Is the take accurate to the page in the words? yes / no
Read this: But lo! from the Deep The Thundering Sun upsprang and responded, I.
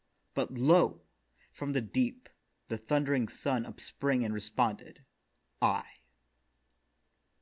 yes